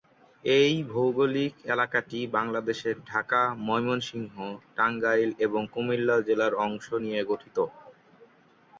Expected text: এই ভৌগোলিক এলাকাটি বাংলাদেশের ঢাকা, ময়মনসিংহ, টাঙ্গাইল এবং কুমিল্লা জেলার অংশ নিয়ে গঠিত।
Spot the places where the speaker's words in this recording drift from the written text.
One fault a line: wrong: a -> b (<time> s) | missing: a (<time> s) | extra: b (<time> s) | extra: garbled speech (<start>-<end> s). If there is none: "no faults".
no faults